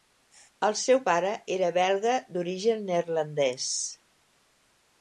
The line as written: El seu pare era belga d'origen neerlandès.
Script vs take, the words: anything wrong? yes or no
no